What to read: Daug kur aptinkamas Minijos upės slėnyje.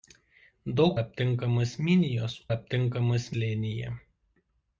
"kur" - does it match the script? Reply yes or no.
no